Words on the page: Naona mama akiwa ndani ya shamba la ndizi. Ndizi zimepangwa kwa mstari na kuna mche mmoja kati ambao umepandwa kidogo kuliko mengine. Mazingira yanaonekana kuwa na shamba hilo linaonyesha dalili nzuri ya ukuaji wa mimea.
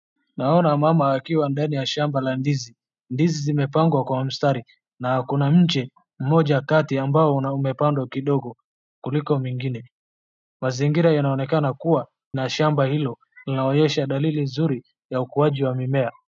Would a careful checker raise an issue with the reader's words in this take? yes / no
no